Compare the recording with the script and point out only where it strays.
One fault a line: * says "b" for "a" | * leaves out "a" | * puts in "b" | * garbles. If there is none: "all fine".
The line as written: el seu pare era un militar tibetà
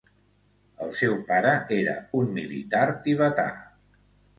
all fine